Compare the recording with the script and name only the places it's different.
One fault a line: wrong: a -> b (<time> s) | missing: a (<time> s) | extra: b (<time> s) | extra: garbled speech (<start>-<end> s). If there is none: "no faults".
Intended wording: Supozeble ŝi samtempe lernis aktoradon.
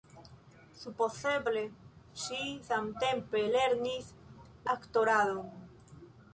no faults